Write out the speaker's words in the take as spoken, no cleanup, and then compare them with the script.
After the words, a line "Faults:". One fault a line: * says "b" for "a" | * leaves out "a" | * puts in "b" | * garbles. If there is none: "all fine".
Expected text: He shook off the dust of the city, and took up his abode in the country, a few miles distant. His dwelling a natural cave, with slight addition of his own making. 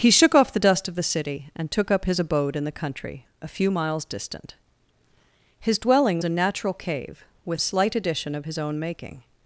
He shook off the dust of the city, and took up his abode in the country, a few miles distant. His dwelling a natural cave, with slight addition of his own making.
Faults:
all fine